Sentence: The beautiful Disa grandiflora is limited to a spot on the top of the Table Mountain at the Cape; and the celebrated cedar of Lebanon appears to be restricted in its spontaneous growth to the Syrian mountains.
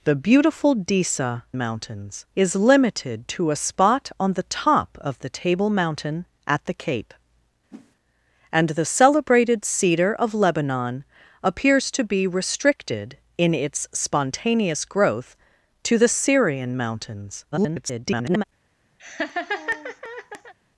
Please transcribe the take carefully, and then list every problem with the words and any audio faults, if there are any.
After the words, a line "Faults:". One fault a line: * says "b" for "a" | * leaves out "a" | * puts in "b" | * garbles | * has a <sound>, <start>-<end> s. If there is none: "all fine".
The beautiful Disa mountains is limited to a spot on the top of the Table Mountain at the Cape; and the celebrated cedar of Lebanon appears to be restricted in its spontaneous growth to the Syrian mountains. [garbled]
Faults:
* says "mountains" for "grandiflora"
* has a whoosh, 7.7-8.0 s
* garbles
* has a laugh, 19.0-20.5 s